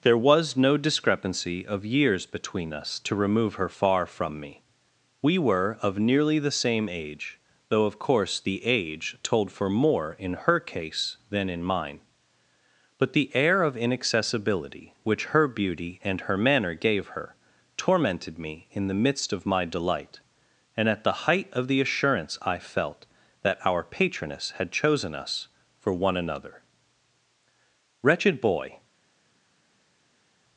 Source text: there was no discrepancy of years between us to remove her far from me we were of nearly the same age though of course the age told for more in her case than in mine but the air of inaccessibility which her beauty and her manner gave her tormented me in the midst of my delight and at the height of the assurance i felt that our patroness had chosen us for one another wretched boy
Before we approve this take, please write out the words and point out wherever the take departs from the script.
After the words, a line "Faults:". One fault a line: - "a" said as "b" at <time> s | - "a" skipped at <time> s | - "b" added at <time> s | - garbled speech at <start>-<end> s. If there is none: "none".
there was no discrepancy of years between us to remove her far from me we were of nearly the same age though of course the age told for more in her case than in mine but the air of inaccessibility which her beauty and her manner gave her tormented me in the midst of my delight and at the height of the assurance i felt that our patroness had chosen us for one another wretched boy
Faults:
none